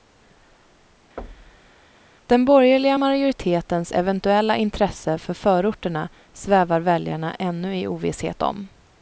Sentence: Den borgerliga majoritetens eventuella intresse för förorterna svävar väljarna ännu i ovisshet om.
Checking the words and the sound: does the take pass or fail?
fail